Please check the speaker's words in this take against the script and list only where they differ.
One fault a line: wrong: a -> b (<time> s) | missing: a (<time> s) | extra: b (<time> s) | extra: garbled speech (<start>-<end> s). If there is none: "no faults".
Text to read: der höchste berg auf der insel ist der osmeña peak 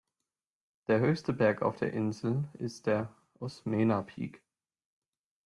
no faults